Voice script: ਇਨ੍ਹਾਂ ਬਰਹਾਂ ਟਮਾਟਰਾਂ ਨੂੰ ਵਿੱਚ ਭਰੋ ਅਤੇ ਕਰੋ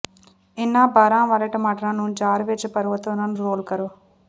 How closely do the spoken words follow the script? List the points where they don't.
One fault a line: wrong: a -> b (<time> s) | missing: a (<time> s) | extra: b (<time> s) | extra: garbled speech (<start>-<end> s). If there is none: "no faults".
extra: ਵਾਲੇ (1.3 s)
extra: ਜਾਰ (2.1 s)
extra: ਉਨ੍ਹਾਂ ਨੂੰ ਰੋਲ (3.1 s)